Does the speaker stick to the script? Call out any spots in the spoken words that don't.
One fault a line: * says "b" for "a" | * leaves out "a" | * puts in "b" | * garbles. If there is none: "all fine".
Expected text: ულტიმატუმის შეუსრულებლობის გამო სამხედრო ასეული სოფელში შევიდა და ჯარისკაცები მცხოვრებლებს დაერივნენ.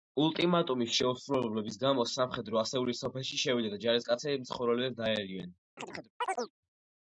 all fine